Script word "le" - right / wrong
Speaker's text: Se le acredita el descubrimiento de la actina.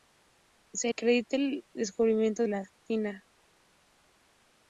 wrong